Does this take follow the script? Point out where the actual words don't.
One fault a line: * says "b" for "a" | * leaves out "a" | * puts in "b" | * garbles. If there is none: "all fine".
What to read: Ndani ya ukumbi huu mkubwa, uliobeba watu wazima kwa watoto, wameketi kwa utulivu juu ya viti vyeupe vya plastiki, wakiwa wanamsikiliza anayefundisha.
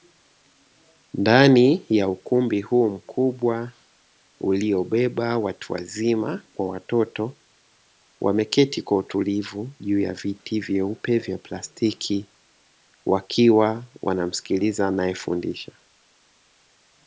all fine